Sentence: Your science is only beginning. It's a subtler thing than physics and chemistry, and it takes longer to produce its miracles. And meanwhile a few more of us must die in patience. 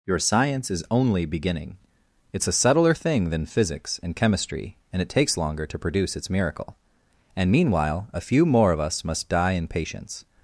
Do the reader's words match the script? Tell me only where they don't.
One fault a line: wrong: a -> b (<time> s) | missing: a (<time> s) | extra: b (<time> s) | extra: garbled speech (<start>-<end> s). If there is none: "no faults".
wrong: miracles -> miracle (6.3 s)